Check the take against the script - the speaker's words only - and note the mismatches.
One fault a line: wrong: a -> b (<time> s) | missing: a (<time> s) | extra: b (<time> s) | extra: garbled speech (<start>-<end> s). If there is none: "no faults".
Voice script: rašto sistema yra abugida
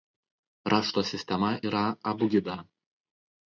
no faults